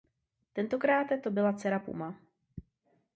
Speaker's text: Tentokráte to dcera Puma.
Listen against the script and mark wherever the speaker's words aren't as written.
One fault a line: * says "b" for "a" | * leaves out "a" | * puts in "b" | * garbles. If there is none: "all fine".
* puts in "byla"